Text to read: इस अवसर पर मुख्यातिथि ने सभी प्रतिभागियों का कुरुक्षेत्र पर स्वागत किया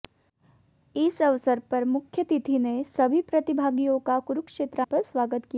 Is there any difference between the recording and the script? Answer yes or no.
no